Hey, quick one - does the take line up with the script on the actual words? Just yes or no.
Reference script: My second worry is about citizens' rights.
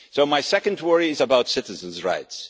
yes